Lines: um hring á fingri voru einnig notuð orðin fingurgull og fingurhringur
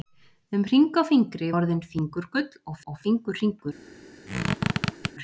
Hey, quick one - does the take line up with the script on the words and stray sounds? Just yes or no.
no